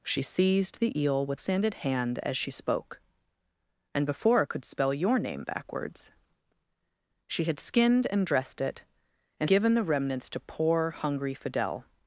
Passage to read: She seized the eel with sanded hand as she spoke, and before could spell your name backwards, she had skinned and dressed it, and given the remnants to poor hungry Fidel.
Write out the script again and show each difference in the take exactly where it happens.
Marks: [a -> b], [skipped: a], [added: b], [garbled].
She seized the eel with sanded hand as she spoke, and before could spell your name backwards, she had skinned and dressed it, and given the remnants to poor hungry Fidel.